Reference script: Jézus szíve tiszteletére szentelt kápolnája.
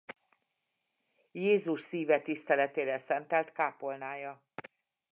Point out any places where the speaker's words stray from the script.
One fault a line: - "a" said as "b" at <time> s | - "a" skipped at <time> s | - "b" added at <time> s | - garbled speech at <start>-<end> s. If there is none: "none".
none